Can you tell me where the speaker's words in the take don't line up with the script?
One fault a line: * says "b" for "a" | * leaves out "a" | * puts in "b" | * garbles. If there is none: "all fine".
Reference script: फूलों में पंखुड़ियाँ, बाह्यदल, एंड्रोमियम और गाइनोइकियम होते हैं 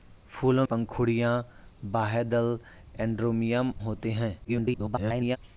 * leaves out "में"
* leaves out "और गाइनोइकियम"
* garbles